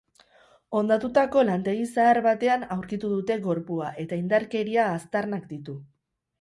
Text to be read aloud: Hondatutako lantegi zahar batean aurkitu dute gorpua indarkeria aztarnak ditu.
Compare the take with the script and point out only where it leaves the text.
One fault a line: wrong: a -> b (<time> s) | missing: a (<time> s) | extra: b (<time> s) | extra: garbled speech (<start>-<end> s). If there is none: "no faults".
extra: eta (4.1 s)